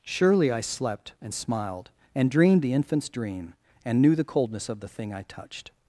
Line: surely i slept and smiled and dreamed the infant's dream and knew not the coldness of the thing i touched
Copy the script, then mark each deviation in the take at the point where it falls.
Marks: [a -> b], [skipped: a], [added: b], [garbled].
surely i slept and smiled and dreamed the infant's dream and knew [skipped: not] the coldness of the thing i touched